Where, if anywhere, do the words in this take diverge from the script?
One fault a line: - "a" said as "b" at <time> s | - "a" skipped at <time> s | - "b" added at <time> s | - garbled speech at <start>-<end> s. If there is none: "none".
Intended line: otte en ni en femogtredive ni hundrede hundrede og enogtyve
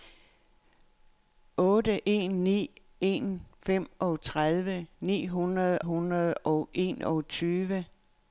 none